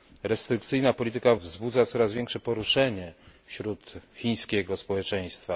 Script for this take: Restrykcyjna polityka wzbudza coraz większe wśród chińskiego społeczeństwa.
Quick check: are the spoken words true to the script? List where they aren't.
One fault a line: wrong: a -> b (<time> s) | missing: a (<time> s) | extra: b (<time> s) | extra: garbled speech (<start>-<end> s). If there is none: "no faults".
extra: poruszenie (2.4 s)